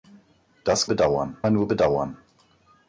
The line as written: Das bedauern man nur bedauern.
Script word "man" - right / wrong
right